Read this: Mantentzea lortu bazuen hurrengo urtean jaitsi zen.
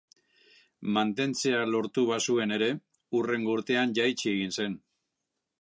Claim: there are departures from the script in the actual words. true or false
true